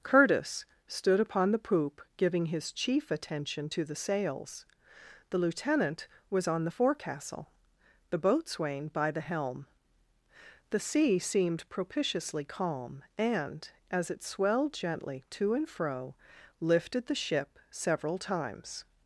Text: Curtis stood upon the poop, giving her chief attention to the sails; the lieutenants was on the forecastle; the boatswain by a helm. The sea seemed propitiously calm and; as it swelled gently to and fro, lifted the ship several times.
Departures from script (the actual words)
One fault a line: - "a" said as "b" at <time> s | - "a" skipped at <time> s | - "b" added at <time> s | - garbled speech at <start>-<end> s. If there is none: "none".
- "her" said as "his" at 2.5 s
- "lieutenants" said as "lieutenant" at 5.4 s
- "a" said as "the" at 9.1 s